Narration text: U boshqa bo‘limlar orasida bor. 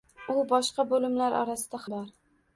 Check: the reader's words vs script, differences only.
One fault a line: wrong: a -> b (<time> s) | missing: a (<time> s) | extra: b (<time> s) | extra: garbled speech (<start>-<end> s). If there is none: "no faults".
no faults